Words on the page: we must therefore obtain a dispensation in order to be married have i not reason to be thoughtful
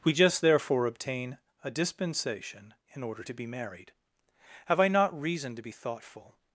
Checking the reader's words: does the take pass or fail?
fail